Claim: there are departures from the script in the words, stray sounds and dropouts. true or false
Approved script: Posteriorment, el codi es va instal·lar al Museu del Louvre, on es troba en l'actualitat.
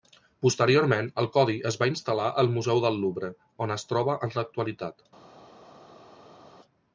false